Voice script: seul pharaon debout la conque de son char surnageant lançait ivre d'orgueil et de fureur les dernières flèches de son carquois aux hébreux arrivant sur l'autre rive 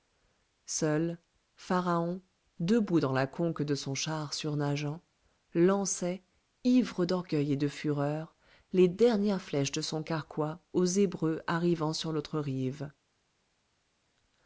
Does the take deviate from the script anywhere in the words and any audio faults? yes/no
yes